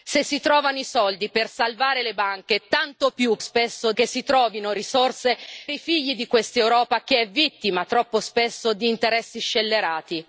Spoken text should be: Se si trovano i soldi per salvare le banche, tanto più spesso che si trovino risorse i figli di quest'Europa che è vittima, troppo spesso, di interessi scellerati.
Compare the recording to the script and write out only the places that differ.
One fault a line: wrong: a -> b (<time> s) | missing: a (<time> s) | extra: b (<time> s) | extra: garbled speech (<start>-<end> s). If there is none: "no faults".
no faults